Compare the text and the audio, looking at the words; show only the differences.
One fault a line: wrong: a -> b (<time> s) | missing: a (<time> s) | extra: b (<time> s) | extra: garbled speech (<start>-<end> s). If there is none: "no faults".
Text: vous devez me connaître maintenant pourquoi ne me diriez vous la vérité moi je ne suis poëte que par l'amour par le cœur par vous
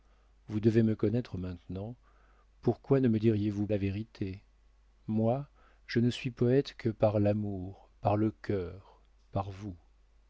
no faults